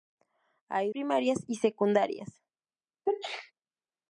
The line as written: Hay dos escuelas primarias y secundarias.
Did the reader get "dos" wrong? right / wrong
wrong